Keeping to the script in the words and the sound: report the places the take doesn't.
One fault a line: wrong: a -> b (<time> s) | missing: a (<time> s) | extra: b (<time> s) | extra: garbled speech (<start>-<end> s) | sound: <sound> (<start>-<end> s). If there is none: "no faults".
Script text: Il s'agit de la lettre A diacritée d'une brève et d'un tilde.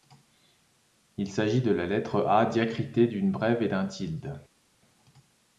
no faults